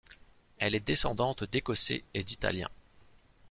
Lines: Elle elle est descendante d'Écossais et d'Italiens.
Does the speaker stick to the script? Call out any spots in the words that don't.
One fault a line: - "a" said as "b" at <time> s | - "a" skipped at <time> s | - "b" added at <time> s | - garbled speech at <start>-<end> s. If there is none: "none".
- "elle" skipped at 0.7 s